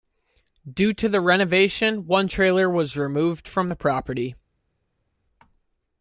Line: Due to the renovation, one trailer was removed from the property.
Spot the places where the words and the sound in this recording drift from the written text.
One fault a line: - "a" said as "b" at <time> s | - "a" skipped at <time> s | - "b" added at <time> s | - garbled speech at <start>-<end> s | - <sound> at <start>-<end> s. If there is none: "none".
none